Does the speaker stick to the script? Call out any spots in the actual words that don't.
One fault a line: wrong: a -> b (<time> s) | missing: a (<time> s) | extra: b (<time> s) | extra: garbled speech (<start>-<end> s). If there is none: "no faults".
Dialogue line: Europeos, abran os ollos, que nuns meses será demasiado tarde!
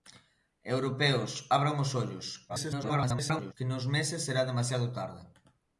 extra: garbled speech (2.5-3.5 s)